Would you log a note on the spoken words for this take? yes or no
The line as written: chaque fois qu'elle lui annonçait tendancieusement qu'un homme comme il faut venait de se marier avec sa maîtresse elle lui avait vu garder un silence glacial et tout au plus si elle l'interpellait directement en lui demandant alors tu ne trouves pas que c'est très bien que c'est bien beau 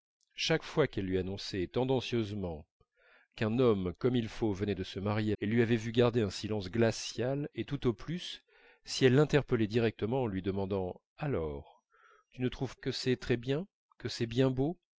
yes